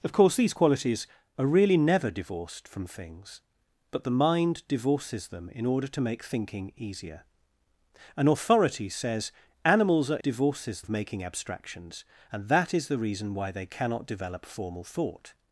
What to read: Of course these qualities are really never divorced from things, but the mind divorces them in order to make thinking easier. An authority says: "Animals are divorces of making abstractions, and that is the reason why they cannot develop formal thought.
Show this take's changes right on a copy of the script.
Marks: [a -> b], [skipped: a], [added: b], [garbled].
Of course these qualities are really never divorced from things, but the mind divorces them in order to make thinking easier. An authority says: "Animals are divorces of making abstractions, and that is the reason why they cannot develop formal thought.